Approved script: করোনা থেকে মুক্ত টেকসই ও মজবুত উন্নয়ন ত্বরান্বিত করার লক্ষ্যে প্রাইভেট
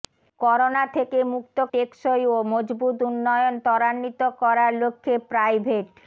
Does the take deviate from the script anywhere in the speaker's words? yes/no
no